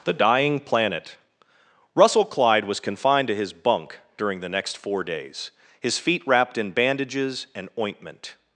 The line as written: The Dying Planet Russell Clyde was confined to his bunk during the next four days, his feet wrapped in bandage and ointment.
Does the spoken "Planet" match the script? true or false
true